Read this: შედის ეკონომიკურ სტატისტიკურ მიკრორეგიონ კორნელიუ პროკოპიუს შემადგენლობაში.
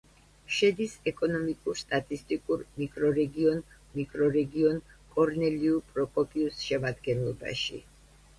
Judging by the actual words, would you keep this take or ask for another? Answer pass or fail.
fail